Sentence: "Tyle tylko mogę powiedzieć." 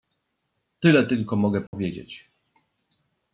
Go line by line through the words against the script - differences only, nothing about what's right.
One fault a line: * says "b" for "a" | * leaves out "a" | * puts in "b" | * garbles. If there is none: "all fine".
all fine